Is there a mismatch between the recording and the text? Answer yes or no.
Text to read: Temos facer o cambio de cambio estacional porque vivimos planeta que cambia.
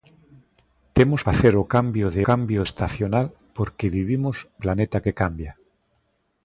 no